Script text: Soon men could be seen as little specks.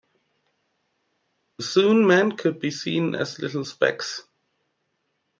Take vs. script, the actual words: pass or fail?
pass